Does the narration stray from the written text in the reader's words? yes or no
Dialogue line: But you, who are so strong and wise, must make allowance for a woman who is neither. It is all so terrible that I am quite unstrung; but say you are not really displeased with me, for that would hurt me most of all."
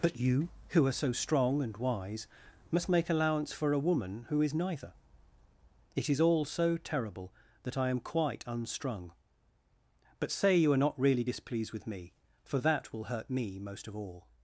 yes